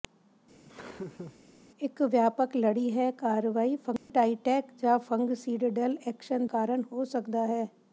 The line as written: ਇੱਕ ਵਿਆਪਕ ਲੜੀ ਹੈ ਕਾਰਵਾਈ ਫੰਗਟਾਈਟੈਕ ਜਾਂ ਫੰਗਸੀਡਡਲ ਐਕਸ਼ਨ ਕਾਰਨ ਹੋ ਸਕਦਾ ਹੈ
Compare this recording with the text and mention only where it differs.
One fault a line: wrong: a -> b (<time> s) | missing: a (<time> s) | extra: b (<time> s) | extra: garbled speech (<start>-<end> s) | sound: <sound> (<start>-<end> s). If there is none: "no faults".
sound: laugh (0.6-1.4 s)
sound: dropout (4.0-4.1 s)